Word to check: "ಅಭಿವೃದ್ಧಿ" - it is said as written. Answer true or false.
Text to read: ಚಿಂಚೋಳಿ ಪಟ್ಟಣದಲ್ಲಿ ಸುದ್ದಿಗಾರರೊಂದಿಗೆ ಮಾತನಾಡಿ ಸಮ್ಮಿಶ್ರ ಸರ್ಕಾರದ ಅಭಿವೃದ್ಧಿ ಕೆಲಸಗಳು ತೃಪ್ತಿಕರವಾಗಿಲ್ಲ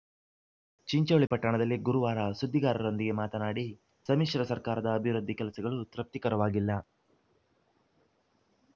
true